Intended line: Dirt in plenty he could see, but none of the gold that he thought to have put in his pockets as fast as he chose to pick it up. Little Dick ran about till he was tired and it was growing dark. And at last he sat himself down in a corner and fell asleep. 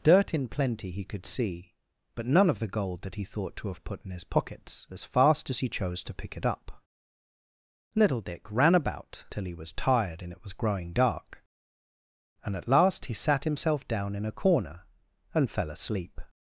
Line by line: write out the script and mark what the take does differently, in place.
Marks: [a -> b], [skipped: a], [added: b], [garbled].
Dirt in plenty he could see, but none of the gold that he thought to have put in his pockets as fast as he chose to pick it up. Little Dick ran about till he was tired and it was growing dark. And at last he sat himself down in a corner and fell asleep.